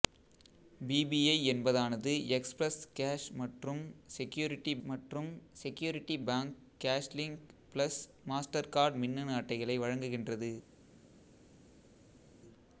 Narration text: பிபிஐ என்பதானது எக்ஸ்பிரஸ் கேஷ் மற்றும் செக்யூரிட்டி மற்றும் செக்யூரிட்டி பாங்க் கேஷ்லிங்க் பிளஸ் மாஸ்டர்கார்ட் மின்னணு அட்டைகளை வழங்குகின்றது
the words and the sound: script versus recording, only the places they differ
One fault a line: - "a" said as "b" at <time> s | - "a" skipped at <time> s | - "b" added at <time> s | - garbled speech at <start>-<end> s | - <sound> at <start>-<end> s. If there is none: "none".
none